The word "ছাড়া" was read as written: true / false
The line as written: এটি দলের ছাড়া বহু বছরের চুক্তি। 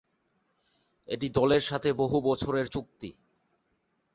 false